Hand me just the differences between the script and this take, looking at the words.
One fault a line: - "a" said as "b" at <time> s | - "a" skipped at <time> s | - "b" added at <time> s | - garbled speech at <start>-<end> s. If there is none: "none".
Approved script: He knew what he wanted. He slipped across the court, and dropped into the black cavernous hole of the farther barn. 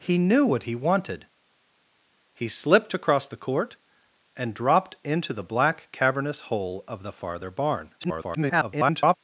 - garbled speech at 8.0-9.2 s